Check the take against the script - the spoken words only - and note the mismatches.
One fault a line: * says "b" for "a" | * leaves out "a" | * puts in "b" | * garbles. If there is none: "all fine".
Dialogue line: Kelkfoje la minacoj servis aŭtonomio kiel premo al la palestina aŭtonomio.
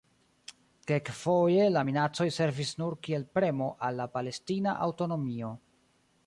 * says "nur" for "aŭtonomio"